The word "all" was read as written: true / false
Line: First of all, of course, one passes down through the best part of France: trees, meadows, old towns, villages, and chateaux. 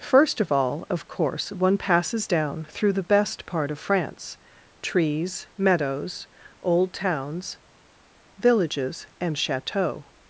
true